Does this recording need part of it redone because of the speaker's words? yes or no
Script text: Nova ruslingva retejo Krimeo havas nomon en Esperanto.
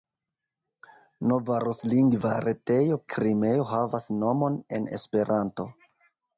no